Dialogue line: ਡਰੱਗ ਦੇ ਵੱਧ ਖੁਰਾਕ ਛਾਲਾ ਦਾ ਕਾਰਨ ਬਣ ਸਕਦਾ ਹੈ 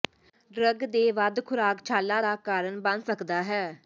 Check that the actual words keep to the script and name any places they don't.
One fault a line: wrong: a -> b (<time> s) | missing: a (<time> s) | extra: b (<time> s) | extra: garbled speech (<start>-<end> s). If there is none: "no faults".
no faults